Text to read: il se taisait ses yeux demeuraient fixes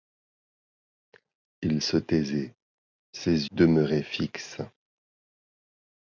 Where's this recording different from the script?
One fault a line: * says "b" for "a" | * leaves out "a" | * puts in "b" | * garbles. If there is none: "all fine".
* leaves out "yeux"